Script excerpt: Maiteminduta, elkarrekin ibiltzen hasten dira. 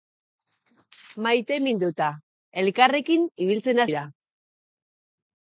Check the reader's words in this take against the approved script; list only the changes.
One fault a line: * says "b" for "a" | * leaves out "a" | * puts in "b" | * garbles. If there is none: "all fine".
* leaves out "hasten"